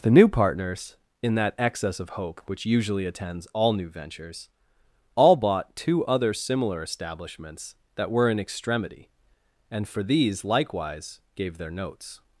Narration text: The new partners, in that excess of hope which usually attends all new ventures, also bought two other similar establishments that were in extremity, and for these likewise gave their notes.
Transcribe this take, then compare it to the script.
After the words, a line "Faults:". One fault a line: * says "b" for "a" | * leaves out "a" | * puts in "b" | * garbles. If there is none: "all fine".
The new partners, in that excess of hope which usually attends all new ventures, all bought two other similar establishments that were in extremity, and for these likewise gave their notes.
Faults:
* says "all" for "also"